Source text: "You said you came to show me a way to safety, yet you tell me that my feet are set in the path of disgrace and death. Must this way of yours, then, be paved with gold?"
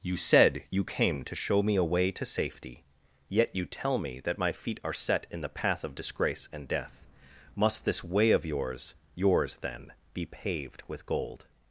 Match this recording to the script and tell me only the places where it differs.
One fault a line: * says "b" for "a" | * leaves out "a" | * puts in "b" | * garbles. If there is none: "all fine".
* puts in "yours"